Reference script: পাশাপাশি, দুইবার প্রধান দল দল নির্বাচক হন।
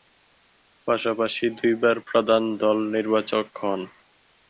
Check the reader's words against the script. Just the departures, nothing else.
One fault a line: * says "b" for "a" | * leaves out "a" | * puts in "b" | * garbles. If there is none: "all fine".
* leaves out "দল"